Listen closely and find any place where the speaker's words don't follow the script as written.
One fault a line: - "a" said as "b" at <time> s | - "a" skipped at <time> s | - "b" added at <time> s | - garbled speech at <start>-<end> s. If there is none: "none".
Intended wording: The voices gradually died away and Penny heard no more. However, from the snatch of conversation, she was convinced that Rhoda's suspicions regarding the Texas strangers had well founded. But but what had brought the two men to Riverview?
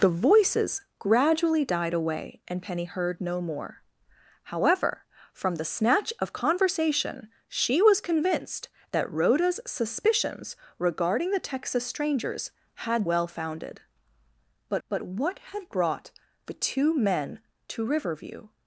none